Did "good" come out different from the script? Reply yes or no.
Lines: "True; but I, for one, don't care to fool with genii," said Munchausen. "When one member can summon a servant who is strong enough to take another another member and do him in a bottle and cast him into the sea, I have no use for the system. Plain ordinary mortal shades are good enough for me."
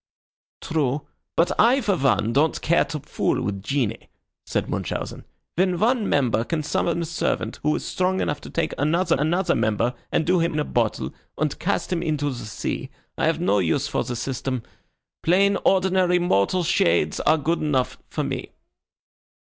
no